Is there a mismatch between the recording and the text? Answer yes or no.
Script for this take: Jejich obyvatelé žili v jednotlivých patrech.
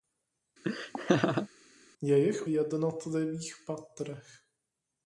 yes